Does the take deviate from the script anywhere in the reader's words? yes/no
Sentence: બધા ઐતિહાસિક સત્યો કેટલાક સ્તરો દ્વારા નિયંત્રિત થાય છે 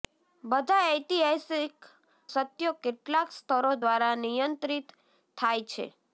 no